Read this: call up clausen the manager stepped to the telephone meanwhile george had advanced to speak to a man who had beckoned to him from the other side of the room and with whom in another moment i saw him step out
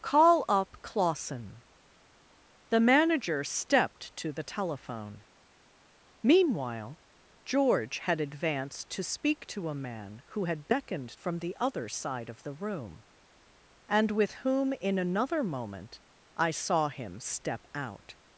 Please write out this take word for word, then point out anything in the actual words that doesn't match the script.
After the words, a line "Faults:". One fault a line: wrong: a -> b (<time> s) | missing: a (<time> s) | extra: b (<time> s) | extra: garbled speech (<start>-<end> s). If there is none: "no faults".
call up clausen the manager stepped to the telephone meanwhile george had advanced to speak to a man who had beckoned from the other side of the room and with whom in another moment i saw him step out
Faults:
missing: to him (11.1 s)